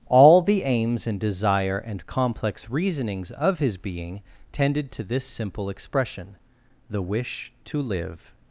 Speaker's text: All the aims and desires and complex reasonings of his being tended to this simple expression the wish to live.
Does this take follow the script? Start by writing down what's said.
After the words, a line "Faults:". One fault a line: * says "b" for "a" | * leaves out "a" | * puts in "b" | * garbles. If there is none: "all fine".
All the aims and desire and complex reasonings of his being tended to this simple expression the wish to live.
Faults:
* says "desire" for "desires"